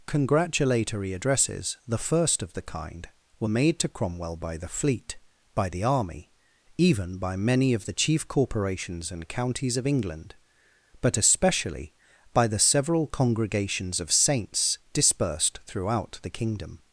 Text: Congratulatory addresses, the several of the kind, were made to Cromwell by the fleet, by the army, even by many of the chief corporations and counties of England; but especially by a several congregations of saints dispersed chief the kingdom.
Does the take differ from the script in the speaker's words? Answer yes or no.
yes